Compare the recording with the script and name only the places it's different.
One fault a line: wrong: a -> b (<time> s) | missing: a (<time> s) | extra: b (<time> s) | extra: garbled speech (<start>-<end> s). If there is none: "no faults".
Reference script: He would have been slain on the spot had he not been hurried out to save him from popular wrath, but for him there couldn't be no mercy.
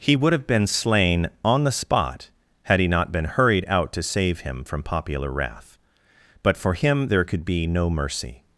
wrong: couldn't -> could (7.2 s)